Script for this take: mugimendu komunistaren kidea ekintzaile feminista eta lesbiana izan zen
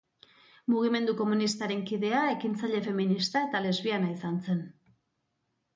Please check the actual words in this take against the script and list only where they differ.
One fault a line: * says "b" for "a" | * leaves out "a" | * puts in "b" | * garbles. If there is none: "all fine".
all fine